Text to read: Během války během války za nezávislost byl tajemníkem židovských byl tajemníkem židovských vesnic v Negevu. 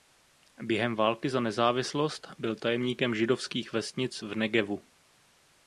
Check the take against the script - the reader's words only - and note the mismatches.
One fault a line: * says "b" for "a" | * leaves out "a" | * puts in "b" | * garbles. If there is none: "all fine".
* leaves out "během války"
* leaves out "byl tajemníkem židovských"